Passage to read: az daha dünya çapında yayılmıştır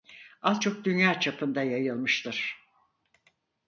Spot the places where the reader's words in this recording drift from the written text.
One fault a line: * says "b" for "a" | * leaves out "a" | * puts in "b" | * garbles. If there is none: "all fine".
* says "çok" for "daha"